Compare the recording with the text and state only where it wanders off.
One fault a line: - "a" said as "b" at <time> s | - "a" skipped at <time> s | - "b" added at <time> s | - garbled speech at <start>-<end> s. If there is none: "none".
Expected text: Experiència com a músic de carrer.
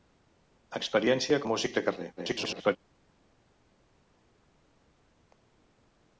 - "com" skipped at 1.4 s
- garbled speech at 2.2-2.8 s